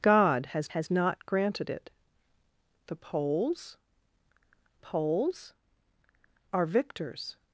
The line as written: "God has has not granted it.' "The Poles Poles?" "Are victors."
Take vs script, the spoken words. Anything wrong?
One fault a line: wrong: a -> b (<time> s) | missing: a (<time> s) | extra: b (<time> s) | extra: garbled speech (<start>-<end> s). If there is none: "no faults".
no faults